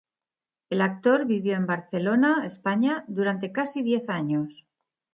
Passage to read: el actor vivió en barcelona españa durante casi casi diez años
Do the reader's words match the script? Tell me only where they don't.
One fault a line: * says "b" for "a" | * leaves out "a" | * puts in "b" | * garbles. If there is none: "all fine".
* leaves out "casi"